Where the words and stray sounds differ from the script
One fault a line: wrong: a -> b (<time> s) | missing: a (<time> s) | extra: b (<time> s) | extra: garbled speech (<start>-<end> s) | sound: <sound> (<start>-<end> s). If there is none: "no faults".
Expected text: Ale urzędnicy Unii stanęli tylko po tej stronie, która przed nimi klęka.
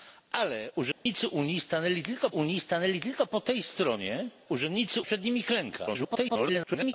sound: dropout (0.9-1.1 s)
extra: Unii stanęli tylko (2.3 s)
wrong: która -> urzędnicy (4.5 s)
extra: garbled speech (5.9-6.9 s)